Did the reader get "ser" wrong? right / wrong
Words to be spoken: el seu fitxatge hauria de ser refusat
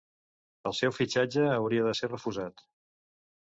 right